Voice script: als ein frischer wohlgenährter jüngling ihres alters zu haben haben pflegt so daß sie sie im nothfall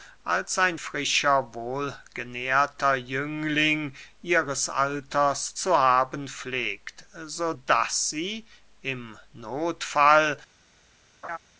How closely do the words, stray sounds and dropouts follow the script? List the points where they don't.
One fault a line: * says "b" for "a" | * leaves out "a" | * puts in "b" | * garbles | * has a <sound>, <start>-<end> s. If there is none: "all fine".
* leaves out "haben"
* leaves out "sie"
* has a laugh, 11.2-11.4 s